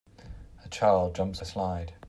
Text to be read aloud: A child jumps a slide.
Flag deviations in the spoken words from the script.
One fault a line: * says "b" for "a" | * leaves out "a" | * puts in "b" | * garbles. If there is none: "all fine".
all fine